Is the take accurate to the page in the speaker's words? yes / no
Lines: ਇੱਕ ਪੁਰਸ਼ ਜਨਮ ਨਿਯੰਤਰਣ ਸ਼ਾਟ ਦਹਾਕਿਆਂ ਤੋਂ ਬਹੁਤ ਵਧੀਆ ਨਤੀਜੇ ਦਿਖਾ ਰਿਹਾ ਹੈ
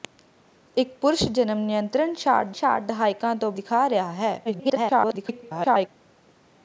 no